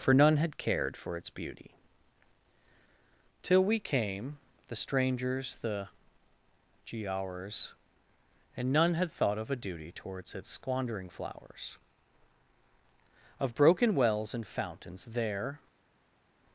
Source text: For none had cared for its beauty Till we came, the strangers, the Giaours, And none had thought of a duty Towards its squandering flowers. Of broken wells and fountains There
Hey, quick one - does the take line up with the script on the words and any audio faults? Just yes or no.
yes